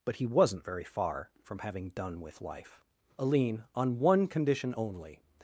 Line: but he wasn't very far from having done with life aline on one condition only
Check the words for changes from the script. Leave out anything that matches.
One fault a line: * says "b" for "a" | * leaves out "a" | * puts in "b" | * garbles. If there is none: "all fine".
all fine